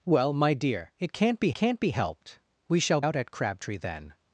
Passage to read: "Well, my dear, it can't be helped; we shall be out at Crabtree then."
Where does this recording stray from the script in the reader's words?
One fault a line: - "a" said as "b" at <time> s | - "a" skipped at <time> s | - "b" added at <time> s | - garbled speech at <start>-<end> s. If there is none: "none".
- "can't be" added at 1.5 s
- "be" skipped at 3.0 s